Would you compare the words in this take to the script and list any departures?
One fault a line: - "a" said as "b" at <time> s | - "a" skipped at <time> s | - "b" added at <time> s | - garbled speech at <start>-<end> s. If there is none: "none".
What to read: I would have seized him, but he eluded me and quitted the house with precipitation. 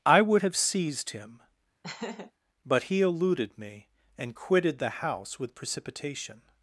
none